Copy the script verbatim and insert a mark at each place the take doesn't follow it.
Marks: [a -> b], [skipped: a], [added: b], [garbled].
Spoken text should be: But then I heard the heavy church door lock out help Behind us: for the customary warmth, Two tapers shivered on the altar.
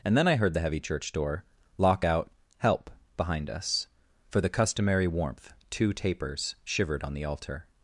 [But -> And] then I heard the heavy church door lock out help Behind us: for the customary warmth, Two tapers shivered on the altar.